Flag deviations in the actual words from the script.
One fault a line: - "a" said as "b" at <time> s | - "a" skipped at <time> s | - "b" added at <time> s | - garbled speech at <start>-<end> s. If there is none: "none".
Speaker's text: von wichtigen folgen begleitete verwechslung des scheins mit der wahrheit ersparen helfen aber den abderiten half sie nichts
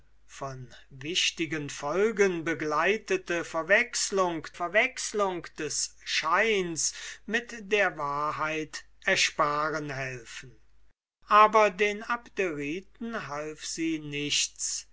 - "verwechslung" added at 4.5 s